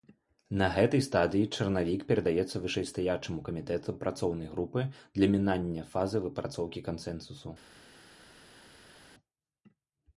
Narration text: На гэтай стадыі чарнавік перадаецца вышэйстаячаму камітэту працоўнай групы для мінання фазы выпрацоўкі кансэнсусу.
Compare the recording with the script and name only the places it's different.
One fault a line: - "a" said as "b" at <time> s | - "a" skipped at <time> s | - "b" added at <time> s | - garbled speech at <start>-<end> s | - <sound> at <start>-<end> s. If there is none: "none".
none